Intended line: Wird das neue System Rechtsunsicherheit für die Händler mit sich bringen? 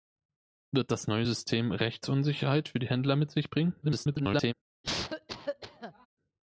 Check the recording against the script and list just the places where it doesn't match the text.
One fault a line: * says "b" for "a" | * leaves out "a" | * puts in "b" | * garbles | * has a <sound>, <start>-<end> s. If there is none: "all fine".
* garbles
* has a cough, 4.8-6.1 s